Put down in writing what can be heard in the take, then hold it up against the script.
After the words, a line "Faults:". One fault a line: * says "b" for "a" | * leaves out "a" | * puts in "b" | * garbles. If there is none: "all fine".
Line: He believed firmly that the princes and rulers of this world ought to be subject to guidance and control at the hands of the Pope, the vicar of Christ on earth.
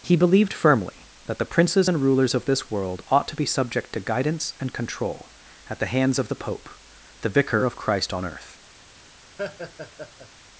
He believed firmly that the princes and rulers of this world ought to be subject to guidance and control at the hands of the Pope, the vicar of Christ on earth.
Faults:
all fine